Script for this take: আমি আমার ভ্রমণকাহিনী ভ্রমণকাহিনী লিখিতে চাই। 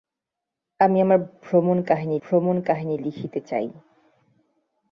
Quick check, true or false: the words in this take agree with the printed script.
true